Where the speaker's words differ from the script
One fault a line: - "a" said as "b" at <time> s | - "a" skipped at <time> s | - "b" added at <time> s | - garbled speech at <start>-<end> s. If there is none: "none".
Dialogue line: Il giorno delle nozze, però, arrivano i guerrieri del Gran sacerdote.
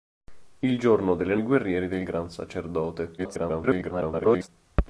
- "nozze però arrivano" skipped at 1.4 s
- garbled speech at 3.2-4.5 s